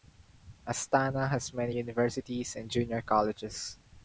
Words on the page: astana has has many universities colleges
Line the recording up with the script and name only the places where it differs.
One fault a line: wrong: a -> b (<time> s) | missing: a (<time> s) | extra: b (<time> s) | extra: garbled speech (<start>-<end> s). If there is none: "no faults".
missing: has (1.5 s)
extra: and junior (2.5 s)